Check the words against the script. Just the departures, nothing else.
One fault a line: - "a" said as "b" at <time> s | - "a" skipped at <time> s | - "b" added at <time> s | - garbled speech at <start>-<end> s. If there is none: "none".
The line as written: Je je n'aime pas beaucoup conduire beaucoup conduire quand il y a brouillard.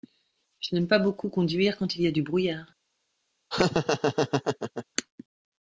- "je" skipped at 0.7 s
- "beaucoup conduire" skipped at 1.8 s
- "du" added at 2.1 s